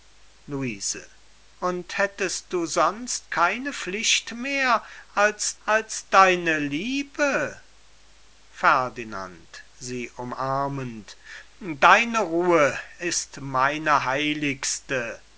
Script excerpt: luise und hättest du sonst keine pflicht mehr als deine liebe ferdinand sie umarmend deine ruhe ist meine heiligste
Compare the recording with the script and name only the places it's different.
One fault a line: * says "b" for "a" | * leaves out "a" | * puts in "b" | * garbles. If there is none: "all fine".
* puts in "als"